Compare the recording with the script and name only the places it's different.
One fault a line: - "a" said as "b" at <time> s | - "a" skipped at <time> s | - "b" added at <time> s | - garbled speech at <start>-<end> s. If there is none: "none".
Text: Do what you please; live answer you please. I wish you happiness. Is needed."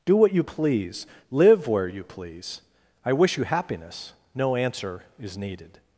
- "answer" said as "where" at 1.7 s
- "No answer" added at 4.3 s